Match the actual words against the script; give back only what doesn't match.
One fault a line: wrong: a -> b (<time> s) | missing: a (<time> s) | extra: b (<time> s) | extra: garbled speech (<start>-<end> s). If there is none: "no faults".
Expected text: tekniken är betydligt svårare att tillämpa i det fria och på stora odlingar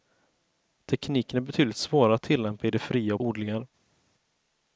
missing: på stora (3.2 s)